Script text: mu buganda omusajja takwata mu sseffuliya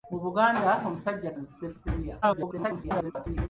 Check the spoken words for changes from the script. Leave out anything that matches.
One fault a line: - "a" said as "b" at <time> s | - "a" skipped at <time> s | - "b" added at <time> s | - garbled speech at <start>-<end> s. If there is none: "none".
- "takwata" skipped at 1.3 s
- garbled speech at 2.2-3.5 s